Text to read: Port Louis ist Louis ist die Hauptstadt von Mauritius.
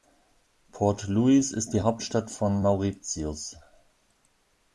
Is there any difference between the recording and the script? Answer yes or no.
yes